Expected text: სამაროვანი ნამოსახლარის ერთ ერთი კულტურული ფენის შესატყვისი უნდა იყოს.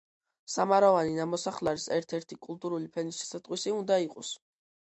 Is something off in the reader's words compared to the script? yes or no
no